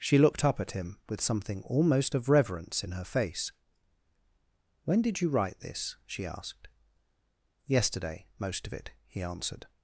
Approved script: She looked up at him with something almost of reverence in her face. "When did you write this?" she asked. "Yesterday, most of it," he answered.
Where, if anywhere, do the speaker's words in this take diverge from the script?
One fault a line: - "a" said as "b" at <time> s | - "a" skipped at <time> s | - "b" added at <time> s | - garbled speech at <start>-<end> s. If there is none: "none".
none